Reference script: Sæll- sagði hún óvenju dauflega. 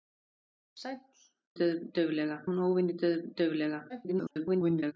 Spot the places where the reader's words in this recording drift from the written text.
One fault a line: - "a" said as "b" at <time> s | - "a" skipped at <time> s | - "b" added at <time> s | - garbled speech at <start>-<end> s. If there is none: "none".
- "sagði" said as "dauflega" at 1.6 s
- garbled speech at 3.9-4.9 s